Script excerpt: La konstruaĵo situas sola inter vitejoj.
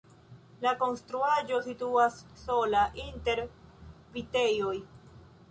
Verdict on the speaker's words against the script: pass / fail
pass